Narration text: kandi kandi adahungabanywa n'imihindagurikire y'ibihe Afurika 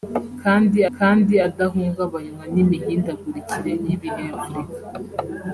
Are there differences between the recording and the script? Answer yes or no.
no